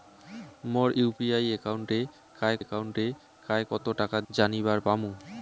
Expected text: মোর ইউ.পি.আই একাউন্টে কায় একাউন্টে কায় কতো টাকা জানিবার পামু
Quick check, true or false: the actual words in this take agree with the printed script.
true